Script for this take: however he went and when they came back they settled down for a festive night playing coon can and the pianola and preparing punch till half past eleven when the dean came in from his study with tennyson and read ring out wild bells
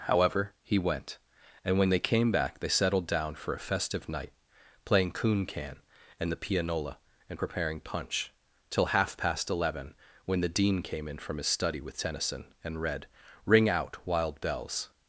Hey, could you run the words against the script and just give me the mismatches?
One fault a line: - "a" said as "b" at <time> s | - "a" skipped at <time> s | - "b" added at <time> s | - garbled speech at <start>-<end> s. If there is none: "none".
none